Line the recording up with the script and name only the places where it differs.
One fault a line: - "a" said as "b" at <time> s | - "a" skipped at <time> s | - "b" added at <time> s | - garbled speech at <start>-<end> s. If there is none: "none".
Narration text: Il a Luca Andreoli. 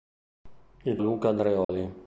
none